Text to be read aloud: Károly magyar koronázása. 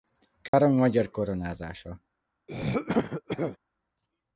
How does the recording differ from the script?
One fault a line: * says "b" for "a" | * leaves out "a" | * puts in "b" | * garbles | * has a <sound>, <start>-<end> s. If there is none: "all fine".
* has a dropout, 0.5-0.5 s
* has a throat clearing, 2.5-3.6 s